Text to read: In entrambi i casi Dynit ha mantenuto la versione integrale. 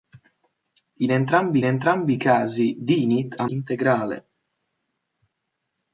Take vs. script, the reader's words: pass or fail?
fail